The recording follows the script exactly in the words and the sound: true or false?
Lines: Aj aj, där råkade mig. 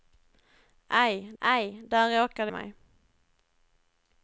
true